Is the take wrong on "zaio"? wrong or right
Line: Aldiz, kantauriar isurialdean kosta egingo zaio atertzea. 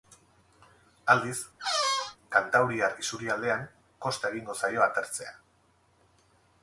right